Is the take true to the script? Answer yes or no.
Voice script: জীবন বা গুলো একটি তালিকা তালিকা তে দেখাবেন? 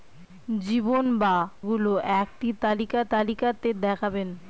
yes